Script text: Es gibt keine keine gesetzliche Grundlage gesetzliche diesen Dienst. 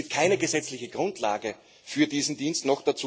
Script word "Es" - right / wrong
right